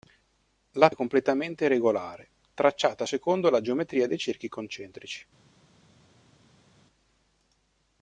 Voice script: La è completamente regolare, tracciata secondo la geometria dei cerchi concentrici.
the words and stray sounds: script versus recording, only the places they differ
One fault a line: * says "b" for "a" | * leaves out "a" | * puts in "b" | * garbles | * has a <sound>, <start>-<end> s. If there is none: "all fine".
all fine